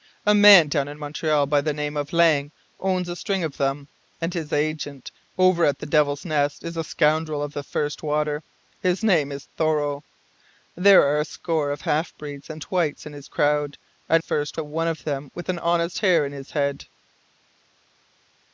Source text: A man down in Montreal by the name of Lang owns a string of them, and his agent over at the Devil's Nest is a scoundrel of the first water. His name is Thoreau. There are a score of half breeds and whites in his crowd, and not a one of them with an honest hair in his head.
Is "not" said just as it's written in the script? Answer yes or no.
no